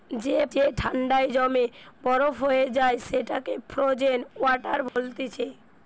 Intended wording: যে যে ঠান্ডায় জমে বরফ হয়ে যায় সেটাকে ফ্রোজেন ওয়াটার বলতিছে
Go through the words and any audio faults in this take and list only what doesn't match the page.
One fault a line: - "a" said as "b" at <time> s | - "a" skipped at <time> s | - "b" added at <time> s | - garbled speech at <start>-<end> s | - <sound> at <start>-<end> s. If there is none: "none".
- dropout at 4.9-5.0 s